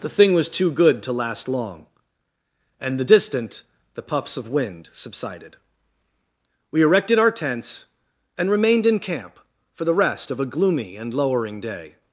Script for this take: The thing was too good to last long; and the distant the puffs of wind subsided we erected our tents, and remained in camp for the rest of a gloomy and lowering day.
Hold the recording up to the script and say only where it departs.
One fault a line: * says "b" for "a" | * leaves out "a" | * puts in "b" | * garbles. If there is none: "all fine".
all fine